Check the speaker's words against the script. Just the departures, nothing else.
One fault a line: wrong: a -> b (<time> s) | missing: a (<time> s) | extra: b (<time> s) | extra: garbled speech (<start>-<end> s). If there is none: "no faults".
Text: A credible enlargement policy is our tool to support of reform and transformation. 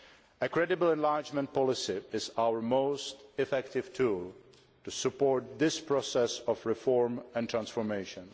extra: most effective (2.6 s)
extra: this process (5.6 s)